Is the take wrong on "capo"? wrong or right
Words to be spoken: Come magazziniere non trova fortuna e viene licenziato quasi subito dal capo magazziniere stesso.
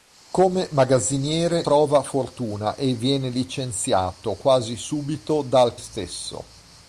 wrong